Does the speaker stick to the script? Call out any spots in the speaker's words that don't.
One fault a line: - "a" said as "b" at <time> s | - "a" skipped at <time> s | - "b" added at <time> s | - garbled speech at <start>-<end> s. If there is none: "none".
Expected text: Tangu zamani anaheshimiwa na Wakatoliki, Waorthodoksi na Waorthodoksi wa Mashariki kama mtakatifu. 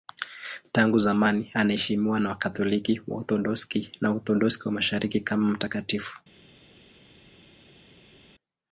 none